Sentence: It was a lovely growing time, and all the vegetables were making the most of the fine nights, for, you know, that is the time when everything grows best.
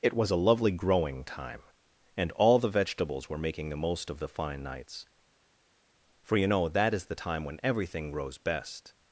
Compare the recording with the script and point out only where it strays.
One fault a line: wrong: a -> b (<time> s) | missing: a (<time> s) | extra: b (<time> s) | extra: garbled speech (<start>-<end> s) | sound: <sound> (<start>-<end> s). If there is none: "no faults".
no faults